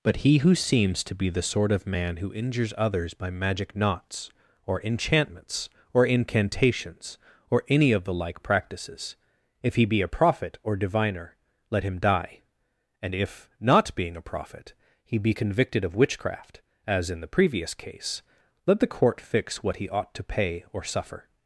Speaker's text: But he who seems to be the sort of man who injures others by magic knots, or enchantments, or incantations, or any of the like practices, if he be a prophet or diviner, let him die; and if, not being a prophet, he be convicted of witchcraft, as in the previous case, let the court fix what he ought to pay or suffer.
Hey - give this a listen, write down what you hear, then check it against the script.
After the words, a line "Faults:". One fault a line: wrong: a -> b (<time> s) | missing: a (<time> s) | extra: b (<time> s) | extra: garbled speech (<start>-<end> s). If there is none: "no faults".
But he who seems to be the sort of man who injures others by magic knots, or enchantments, or incantations, or any of the like practices, if he be a prophet or diviner, let him die; and if, not being a prophet, he be convicted of witchcraft, as in the previous case, let the court fix what he ought to pay or suffer.
Faults:
no faults